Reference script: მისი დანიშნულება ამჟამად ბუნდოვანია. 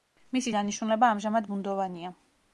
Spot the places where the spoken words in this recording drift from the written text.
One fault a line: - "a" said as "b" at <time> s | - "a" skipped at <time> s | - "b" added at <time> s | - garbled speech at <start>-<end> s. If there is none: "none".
none